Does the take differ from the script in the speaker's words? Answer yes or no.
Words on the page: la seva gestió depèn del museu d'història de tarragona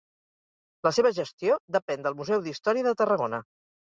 no